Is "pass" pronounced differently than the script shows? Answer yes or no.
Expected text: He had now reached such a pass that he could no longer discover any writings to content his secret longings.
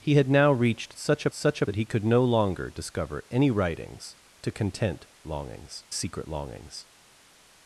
yes